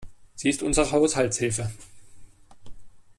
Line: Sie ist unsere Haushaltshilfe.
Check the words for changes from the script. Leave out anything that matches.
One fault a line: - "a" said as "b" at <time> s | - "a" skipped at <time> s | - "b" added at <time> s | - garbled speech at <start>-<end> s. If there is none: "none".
none